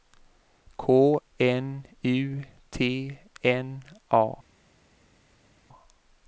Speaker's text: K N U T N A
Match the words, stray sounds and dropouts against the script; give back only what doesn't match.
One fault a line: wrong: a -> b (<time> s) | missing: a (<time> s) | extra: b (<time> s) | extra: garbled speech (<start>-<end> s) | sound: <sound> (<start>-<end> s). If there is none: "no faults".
no faults